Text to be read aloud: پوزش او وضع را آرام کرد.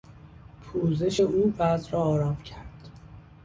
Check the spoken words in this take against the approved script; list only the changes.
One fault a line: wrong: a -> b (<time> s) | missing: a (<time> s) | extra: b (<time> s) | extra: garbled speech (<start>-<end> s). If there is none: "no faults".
no faults